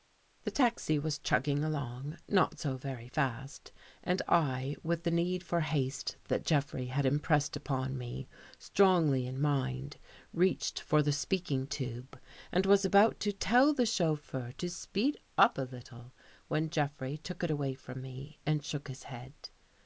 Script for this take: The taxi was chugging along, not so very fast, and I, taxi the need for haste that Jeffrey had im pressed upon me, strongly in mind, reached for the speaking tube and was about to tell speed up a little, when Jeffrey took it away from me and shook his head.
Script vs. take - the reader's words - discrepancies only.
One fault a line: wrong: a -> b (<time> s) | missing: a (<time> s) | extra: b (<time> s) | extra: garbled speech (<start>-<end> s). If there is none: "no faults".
wrong: taxi -> with (4.8 s)
extra: the chauffeur to (13.7 s)